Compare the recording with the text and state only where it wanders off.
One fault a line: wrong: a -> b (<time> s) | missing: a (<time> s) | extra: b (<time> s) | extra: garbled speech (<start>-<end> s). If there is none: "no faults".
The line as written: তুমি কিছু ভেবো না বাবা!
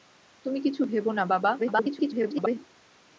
extra: garbled speech (1.6-2.6 s)